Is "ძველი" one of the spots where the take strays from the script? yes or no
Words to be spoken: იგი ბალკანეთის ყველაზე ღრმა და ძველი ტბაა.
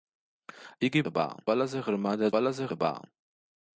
yes